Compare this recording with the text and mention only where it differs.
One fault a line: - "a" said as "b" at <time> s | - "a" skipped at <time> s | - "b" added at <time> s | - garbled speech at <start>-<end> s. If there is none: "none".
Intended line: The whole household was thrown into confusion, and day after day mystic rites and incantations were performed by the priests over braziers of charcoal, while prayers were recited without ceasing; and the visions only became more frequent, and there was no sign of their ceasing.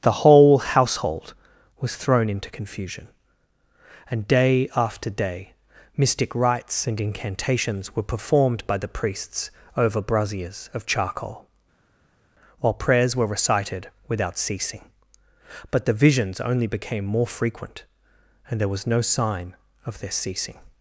- "and" said as "but" at 15.7 s